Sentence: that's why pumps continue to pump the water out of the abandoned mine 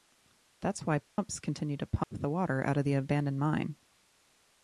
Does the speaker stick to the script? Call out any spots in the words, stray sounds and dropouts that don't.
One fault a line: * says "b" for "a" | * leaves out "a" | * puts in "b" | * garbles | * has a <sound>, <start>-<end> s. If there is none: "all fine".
* has a dropout, 1.1-1.2 s
* has a dropout, 2.0-2.1 s